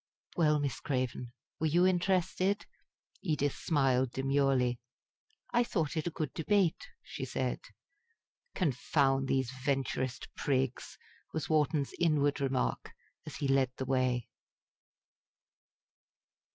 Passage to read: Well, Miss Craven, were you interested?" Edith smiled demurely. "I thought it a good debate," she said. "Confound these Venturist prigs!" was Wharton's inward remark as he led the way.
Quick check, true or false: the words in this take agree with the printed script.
true